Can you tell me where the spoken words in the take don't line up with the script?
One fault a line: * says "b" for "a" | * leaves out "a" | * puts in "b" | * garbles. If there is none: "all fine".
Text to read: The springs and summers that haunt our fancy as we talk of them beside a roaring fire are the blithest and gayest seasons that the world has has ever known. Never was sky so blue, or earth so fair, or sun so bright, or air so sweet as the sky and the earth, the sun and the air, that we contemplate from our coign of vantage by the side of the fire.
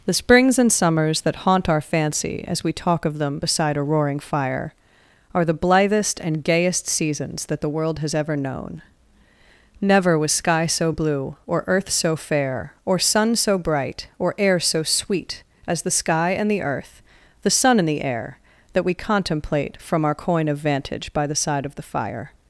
* leaves out "has"